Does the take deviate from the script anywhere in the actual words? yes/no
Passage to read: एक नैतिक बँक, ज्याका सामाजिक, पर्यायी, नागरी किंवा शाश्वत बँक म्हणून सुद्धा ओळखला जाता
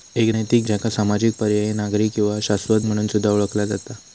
yes